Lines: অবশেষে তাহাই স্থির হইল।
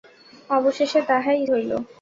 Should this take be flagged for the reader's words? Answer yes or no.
yes